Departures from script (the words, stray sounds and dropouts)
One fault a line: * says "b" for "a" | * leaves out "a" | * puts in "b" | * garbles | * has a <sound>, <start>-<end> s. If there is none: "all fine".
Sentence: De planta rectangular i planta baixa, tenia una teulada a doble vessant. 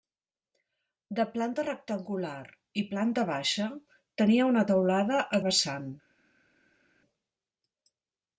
* leaves out "doble"